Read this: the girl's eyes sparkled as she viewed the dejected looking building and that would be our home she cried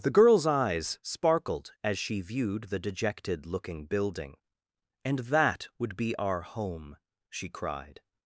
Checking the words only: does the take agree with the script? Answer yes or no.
yes